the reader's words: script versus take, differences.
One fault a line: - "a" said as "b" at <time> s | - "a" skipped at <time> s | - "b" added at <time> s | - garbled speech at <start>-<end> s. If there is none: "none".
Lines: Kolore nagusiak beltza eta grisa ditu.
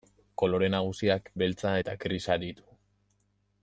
none